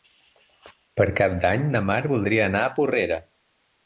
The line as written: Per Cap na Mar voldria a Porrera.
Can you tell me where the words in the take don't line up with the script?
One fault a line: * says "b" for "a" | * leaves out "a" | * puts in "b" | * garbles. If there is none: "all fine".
* puts in "d'Any"
* puts in "anar"